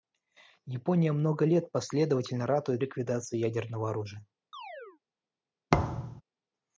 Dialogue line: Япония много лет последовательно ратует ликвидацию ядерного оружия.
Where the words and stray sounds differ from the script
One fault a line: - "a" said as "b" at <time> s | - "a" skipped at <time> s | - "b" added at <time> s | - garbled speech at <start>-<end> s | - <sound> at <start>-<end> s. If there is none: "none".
- chirp at 4.5-5.0 s
- thud at 5.7-6.2 s